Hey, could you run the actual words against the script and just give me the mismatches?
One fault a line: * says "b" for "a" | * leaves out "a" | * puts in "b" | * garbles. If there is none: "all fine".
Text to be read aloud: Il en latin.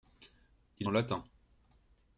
all fine